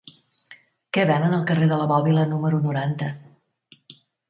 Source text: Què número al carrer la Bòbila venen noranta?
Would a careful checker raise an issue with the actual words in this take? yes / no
yes